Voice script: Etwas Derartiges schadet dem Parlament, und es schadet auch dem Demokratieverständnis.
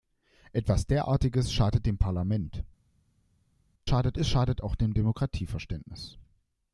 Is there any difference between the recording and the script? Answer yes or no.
yes